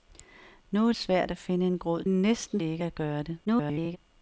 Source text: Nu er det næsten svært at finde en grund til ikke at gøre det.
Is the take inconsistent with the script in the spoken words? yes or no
yes